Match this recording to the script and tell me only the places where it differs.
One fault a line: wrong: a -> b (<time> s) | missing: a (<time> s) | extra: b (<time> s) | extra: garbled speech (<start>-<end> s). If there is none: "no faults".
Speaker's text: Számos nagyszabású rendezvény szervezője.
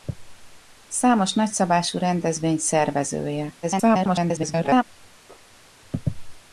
extra: garbled speech (3.6-4.8 s)